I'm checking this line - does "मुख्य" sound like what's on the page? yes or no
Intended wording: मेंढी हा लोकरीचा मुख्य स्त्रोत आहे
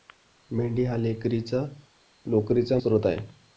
no